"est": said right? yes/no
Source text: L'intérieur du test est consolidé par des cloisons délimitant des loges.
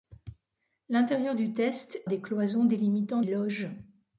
no